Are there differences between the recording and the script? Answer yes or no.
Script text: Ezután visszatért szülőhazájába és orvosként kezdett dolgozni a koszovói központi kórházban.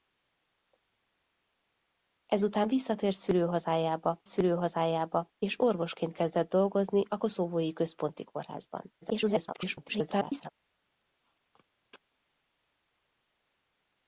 yes